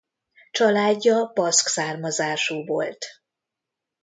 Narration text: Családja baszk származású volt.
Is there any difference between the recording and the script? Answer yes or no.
no